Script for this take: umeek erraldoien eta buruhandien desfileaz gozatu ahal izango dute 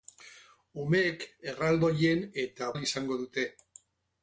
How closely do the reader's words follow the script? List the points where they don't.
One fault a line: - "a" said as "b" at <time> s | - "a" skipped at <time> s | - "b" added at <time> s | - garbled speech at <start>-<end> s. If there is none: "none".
- "buruhandien desfileaz gozatu" skipped at 2.7 s